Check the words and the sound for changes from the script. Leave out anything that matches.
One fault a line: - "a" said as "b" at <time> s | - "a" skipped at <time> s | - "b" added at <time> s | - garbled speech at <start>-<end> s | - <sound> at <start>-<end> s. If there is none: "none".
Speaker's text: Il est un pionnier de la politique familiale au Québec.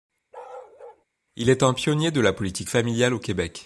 - bark at 0.3-1.1 s